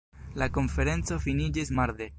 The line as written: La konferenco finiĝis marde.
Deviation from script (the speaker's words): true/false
false